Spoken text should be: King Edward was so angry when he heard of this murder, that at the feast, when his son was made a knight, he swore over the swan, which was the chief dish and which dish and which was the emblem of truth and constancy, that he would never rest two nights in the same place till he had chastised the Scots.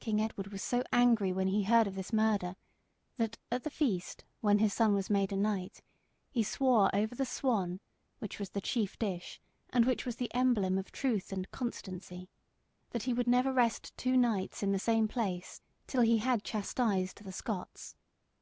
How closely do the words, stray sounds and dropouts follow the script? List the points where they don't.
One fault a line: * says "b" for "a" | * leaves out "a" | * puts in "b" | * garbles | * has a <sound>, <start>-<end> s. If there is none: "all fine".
* leaves out "dish and which"